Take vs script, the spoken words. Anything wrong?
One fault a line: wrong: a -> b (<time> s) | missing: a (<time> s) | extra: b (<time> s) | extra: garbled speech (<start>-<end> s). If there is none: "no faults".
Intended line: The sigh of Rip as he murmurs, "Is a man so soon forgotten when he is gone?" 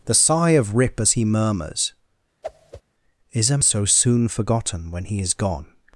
missing: man (3.6 s)